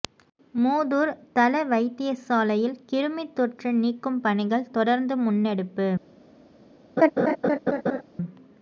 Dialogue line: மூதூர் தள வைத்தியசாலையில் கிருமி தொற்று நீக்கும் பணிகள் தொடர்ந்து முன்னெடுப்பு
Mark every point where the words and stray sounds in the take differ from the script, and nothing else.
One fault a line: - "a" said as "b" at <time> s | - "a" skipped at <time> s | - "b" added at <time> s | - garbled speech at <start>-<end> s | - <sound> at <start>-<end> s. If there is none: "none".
- laugh at 7.0-8.0 s